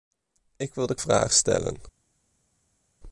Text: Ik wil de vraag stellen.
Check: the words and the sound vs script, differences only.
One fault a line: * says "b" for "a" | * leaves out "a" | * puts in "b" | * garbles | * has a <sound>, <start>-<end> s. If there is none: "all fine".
all fine